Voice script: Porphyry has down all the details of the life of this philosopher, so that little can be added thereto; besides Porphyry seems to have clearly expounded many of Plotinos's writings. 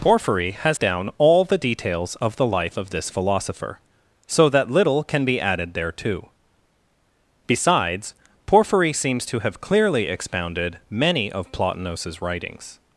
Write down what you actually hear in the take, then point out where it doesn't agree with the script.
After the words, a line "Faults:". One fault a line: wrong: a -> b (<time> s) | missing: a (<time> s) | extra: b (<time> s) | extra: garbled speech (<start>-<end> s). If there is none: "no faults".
Porphyry has down all the details of the life of this philosopher, so that little can be added thereto; besides Porphyry seems to have clearly expounded many of Plotinos's writings.
Faults:
no faults